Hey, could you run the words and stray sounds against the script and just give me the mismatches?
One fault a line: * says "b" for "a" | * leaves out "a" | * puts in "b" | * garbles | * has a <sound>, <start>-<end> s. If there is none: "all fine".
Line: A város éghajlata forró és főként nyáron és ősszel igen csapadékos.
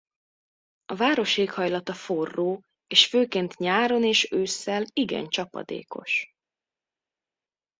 all fine